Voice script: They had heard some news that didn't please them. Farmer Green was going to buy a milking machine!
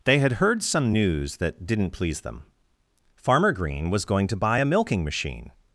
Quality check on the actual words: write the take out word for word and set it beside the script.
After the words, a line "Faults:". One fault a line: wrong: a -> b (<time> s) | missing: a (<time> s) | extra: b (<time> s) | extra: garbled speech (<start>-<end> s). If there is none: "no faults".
They had heard some news that didn't please them. Farmer Green was going to buy a milking machine!
Faults:
no faults